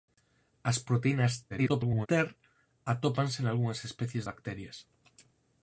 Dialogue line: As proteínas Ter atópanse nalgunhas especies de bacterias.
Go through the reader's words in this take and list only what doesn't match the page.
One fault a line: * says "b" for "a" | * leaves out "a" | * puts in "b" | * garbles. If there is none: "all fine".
* garbles
* leaves out "de"